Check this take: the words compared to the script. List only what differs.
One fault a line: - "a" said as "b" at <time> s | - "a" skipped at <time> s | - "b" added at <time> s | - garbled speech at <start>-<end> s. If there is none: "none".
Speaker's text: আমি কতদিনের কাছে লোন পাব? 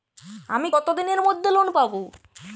- "কাছে" said as "মধ্যে" at 1.2 s